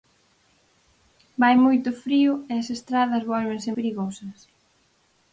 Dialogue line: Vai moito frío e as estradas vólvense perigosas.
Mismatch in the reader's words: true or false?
false